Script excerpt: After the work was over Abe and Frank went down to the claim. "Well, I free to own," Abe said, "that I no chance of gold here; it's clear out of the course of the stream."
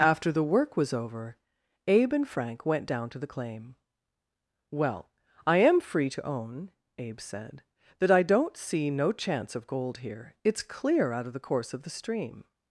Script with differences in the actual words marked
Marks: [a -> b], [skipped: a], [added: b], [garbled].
After the work was over Abe and Frank went down to the claim. "Well, I [added: am] free to own," Abe said, "that I [added: don't see] no chance of gold here; it's clear out of the course of the stream."